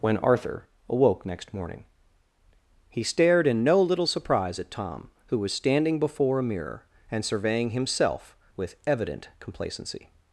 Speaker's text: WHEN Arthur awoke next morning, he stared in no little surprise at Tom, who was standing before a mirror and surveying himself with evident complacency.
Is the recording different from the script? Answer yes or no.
no